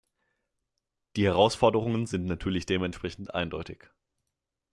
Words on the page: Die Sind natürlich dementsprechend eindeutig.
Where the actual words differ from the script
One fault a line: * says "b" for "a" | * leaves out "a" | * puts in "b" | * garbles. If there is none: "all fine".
* puts in "Herausforderungen"